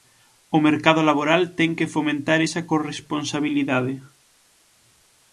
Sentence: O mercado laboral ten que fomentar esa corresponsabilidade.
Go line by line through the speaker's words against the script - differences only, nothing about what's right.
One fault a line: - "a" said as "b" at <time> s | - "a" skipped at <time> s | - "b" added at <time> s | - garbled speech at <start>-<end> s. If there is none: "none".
none